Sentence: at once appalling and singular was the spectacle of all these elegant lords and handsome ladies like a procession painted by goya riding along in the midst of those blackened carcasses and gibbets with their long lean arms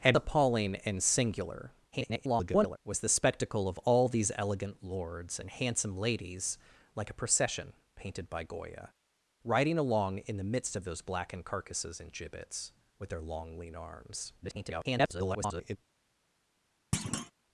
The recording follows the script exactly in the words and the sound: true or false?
false